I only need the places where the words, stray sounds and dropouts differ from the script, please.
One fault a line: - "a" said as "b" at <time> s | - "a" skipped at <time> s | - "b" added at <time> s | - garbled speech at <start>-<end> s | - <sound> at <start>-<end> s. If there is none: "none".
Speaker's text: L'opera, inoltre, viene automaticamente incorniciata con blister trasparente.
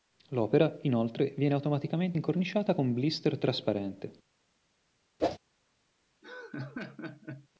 - whoosh at 5.2-5.4 s
- laugh at 6.2-7.5 s